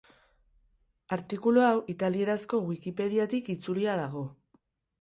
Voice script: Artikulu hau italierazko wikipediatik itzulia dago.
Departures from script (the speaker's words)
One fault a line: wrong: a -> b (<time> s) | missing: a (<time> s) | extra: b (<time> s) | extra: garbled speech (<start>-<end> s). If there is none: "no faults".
no faults